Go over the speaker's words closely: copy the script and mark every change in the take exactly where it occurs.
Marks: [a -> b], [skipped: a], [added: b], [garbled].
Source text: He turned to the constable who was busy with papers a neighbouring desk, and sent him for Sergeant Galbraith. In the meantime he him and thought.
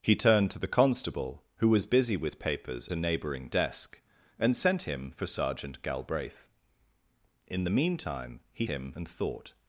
He turned to the constable who was busy with papers a neighbouring desk, and sent him for Sergeant Galbraith. In the meantime he him and thought.